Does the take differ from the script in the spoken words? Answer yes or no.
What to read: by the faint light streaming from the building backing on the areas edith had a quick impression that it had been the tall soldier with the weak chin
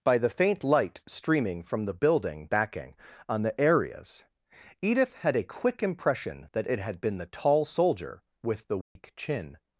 no